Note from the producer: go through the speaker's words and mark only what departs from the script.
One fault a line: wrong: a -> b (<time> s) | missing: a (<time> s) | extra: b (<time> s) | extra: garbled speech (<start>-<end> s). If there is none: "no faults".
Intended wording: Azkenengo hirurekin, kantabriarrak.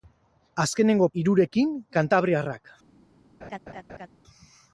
no faults